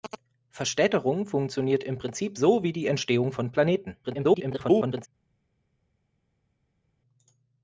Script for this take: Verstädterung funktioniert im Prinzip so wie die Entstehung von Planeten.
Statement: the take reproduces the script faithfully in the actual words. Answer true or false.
false